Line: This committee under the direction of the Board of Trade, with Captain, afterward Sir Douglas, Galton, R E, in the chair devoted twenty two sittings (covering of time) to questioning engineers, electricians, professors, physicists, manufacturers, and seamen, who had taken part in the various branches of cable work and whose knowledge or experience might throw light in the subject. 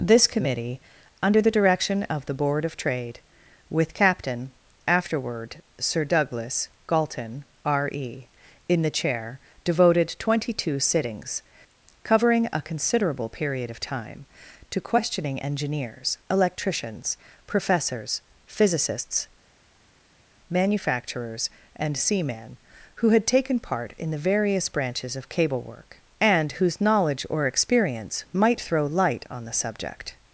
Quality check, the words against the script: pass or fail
fail